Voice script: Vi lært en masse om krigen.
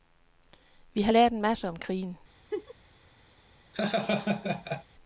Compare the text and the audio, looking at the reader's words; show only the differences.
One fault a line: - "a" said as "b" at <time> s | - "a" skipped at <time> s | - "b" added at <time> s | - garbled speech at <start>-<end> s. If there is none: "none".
- "har" added at 1.0 s